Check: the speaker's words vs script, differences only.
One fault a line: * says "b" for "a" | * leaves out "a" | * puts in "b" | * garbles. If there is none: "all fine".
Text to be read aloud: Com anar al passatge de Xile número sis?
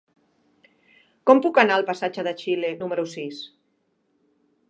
* puts in "puc"